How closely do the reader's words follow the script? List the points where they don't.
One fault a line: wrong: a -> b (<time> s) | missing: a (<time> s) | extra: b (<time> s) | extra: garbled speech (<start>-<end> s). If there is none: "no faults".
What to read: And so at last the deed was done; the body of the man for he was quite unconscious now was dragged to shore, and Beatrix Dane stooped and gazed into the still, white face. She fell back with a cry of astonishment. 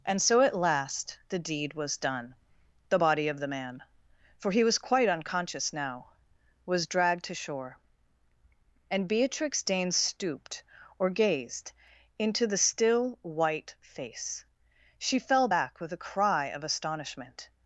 wrong: and -> or (11.0 s)